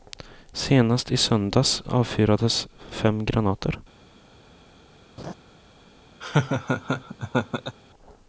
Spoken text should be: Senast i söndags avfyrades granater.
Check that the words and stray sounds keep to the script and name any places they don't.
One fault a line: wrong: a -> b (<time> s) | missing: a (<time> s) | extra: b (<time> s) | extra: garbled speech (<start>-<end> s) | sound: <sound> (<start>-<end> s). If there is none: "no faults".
extra: fem (2.9 s)
sound: laugh (5.2-5.3 s)
sound: laugh (6.2-7.8 s)